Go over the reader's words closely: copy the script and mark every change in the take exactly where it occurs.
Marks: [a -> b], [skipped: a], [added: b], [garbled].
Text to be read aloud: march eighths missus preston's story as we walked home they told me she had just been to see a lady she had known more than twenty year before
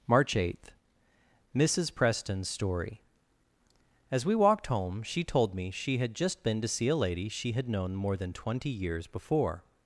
march [eighths -> eighth] missus preston's story as we walked home [they -> she] told me she had just been to see a lady she had known more than twenty [year -> years] before